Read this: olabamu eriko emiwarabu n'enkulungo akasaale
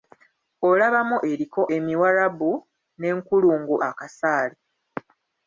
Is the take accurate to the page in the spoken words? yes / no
yes